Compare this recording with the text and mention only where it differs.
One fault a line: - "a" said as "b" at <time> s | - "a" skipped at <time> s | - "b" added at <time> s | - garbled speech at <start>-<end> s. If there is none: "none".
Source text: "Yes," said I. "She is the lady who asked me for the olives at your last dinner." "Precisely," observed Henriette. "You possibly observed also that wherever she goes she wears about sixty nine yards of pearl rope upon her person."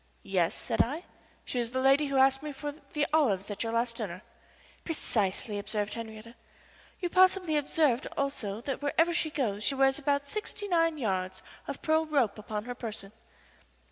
none